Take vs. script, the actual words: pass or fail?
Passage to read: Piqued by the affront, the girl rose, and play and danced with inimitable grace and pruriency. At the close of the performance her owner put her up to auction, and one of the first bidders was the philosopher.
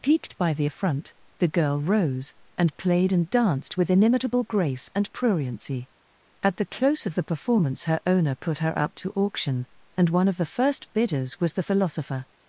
fail